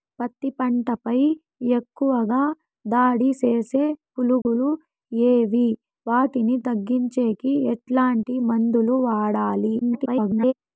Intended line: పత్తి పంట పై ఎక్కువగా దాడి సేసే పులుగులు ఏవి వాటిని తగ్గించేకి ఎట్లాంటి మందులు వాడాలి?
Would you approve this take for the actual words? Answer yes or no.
no